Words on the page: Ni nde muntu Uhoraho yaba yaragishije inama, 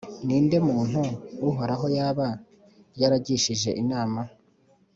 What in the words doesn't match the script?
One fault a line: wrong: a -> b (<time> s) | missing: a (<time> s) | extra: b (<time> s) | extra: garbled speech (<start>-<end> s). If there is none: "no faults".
no faults